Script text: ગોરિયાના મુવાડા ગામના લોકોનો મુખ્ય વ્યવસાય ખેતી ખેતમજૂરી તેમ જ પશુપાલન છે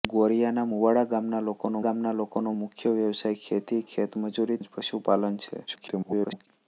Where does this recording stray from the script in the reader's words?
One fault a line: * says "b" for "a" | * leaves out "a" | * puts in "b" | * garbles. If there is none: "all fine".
* puts in "ગામના લોકોનો"
* leaves out "તેમ"
* garbles